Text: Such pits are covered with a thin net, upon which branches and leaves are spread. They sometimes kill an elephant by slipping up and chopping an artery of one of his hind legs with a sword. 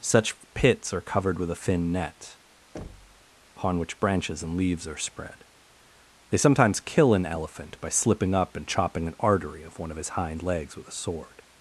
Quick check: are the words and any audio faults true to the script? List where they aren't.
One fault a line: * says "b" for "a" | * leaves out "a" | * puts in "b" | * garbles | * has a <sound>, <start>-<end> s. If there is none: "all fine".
* has a thud, 2.7-3.2 s